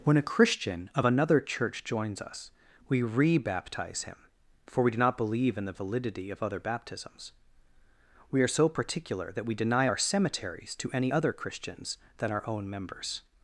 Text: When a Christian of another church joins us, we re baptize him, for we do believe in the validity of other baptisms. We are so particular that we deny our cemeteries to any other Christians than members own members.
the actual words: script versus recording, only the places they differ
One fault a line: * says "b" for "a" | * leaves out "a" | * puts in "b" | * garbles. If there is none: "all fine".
* puts in "not"
* says "our" for "members"